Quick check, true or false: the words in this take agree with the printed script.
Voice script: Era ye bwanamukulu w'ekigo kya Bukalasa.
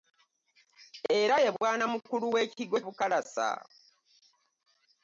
false